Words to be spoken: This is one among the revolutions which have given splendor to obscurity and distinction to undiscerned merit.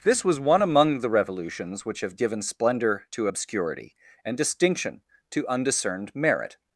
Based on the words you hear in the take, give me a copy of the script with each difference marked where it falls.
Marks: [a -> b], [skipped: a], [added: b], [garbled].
This [is -> was] one among the revolutions which have given splendor to obscurity and distinction to undiscerned merit.